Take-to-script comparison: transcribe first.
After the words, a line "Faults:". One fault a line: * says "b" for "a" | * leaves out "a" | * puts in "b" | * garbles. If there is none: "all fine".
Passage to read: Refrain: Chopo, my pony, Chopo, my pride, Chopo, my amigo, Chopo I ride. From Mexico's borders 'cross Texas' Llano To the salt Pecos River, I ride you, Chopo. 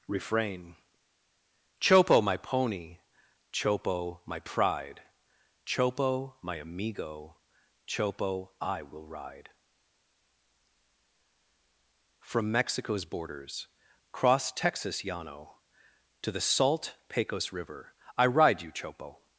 Refrain: Chopo, my pony, Chopo, my pride, Chopo, my amigo, Chopo I will ride. From Mexico's borders 'cross Texas' Llano To the salt Pecos River, I ride you, Chopo.
Faults:
* puts in "will"